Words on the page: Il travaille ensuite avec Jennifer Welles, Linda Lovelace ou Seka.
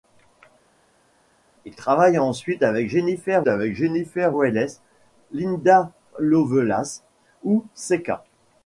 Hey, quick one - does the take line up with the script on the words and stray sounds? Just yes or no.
no